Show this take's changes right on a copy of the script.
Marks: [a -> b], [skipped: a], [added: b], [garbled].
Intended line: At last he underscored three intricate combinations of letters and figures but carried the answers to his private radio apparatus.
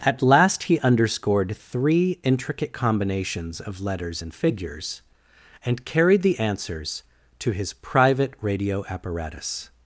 At last he underscored three intricate combinations of letters and figures [but -> and] carried the answers to his private radio apparatus.